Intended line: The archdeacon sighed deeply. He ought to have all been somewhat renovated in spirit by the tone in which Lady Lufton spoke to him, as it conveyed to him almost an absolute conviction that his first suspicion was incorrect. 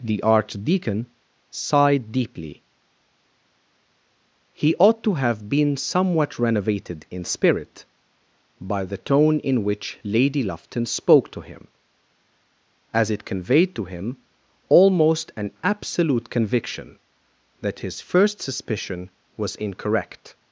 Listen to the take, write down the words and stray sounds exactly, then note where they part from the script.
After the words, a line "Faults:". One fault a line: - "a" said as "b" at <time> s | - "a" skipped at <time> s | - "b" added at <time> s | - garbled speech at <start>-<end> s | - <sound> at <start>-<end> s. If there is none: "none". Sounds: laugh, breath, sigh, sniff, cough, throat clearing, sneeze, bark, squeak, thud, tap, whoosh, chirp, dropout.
The archdeacon sighed deeply. He ought to have been somewhat renovated in spirit by the tone in which Lady Lufton spoke to him, as it conveyed to him almost an absolute conviction that his first suspicion was incorrect.
Faults:
- "all" skipped at 5.5 s